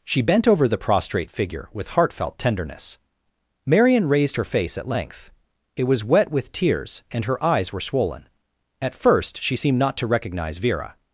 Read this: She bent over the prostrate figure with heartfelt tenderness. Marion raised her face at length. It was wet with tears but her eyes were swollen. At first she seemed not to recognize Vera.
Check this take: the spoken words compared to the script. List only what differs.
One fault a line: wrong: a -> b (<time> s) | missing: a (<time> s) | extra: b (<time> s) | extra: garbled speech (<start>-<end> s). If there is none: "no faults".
wrong: but -> and (7.1 s)